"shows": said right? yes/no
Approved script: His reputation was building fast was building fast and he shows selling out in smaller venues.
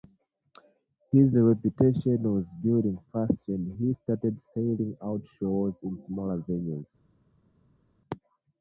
no